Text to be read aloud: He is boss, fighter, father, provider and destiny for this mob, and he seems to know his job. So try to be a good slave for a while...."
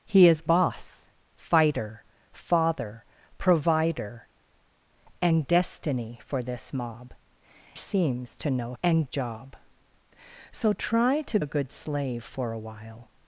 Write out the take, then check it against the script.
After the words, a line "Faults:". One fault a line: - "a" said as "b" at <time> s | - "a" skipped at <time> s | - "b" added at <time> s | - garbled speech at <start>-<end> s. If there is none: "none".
He is boss, fighter, father, provider and destiny for this mob, seems to know and job. So try to a good slave for a while...."
Faults:
- "and he" skipped at 7.1 s
- "his" said as "and" at 8.8 s
- "be" skipped at 11.4 s